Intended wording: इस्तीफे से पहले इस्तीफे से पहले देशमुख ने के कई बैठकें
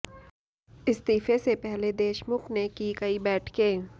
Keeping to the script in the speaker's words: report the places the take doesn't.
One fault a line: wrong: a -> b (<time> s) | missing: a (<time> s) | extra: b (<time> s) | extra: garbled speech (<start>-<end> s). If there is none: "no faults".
missing: इस्तीफे से पहले (1.9 s)
wrong: के -> की (2.7 s)